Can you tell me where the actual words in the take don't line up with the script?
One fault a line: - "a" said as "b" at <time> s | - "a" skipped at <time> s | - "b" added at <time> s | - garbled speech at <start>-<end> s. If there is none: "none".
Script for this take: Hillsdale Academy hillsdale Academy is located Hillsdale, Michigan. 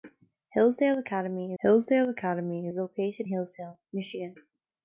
none